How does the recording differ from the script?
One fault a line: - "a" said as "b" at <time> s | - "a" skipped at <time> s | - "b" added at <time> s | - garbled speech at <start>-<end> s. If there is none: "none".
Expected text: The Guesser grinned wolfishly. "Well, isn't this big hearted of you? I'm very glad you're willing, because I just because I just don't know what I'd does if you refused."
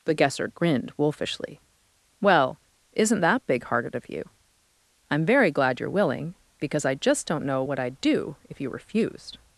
- "this" said as "that" at 3.2 s
- "because I just" skipped at 7.3 s
- "does" said as "do" at 8.0 s